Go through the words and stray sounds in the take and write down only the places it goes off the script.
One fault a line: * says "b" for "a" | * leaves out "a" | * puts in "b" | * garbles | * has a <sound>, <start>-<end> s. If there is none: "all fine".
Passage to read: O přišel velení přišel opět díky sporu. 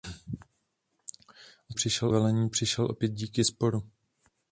all fine